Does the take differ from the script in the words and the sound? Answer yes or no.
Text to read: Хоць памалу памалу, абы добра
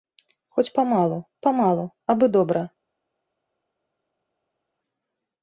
no